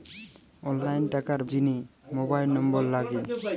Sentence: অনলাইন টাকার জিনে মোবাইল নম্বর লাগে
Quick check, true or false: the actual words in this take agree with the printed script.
true